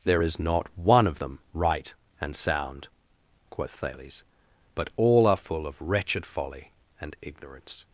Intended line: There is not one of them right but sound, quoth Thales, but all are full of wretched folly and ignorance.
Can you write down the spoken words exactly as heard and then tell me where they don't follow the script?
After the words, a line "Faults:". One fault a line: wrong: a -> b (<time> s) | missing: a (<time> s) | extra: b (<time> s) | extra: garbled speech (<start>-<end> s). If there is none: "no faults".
There is not one of them right and sound, quoth Thales, but all are full of wretched folly and ignorance.
Faults:
wrong: but -> and (2.2 s)